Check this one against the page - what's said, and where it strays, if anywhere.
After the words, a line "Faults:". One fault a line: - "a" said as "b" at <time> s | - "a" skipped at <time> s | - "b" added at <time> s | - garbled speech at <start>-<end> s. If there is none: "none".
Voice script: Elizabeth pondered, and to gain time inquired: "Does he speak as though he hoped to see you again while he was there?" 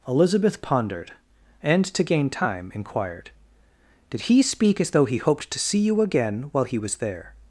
Elizabeth pondered, and to gain time inquired: "Did he speak as though he hoped to see you again while he was there?"
Faults:
- "Does" said as "Did" at 4.1 s